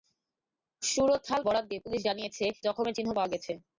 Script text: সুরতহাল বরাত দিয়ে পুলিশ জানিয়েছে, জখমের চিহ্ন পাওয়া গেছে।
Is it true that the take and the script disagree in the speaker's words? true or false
false